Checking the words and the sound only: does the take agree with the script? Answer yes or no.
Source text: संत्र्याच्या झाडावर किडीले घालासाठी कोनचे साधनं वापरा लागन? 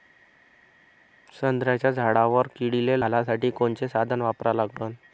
yes